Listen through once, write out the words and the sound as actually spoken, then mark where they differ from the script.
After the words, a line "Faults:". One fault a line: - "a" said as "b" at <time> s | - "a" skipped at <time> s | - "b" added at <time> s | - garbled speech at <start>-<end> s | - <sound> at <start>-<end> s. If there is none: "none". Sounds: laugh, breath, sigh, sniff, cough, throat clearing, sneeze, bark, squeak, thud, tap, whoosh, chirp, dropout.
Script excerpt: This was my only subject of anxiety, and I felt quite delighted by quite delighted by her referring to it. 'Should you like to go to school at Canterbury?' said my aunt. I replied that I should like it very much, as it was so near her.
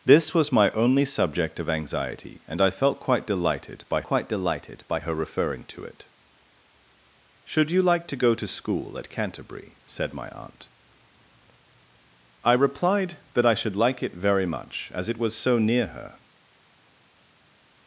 This was my only subject of anxiety, and I felt quite delighted by quite delighted by her referring to it. 'Should you like to go to school at Canterbury?' said my aunt. I replied that I should like it very much, as it was so near her.
Faults:
none